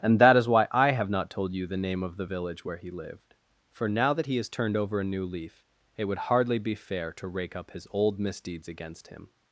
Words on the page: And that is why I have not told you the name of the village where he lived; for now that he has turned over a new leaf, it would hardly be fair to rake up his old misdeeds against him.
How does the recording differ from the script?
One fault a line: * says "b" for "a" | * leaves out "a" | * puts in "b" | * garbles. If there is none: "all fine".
all fine